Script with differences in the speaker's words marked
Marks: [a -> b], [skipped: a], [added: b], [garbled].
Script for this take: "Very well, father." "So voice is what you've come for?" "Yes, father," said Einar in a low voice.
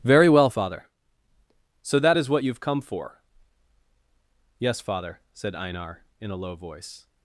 "Very well, father." "So [voice -> that] is what you've come for?" "Yes, father," said Einar in a low voice.